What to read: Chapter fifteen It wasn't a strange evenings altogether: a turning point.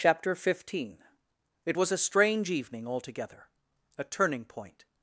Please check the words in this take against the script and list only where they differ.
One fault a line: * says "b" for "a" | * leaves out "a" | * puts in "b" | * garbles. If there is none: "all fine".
* says "was" for "wasn't"
* says "evening" for "evenings"